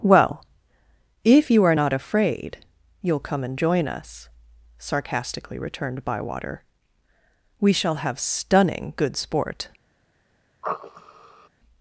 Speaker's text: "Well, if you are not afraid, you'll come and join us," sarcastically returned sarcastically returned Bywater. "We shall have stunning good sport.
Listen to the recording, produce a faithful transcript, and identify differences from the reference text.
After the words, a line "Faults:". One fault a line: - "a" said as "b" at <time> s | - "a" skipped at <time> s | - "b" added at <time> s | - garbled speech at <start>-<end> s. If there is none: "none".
"Well, if you are not afraid, you'll come and join us," sarcastically returned Bywater. "We shall have stunning good sport.
Faults:
- "sarcastically returned" skipped at 6.0 s